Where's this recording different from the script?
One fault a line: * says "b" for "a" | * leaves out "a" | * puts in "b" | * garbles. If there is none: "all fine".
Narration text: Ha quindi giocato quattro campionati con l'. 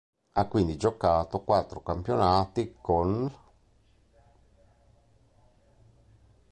all fine